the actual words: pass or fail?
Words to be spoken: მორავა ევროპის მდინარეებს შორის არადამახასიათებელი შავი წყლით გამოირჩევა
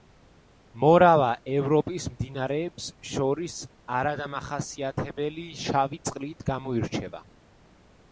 pass